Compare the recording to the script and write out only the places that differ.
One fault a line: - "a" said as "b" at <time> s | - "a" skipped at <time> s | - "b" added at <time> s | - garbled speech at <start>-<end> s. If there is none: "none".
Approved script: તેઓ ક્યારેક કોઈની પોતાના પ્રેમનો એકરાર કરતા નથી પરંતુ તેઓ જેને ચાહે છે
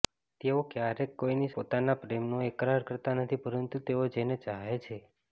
none